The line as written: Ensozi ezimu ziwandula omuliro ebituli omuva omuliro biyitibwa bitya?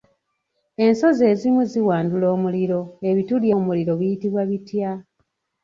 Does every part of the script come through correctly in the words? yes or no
no